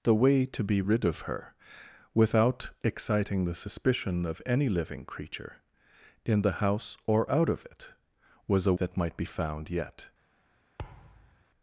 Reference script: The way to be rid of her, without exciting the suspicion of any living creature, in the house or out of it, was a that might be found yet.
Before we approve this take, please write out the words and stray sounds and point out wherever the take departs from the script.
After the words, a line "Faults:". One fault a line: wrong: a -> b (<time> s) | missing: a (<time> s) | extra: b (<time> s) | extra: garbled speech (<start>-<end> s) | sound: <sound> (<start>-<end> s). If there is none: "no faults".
The way to be rid of her, without exciting the suspicion of any living creature, in the house or out of it, was a that might be found yet.
Faults:
sound: thud (10.8-11.4 s)